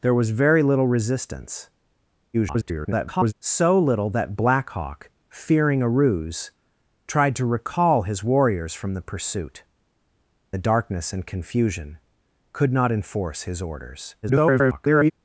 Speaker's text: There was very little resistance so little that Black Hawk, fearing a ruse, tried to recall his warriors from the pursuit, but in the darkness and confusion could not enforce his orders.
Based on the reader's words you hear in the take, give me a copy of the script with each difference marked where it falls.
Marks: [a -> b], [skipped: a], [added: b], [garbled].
There was very little resistance [garbled] so little that Black Hawk, fearing a ruse, tried to recall his warriors from the pursuit, [skipped: but in] the darkness and confusion could not enforce his orders. [garbled]